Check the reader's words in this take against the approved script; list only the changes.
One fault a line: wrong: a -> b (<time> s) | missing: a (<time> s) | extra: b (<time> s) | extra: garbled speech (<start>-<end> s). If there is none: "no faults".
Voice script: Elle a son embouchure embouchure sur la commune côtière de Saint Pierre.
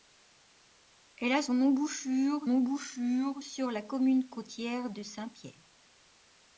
no faults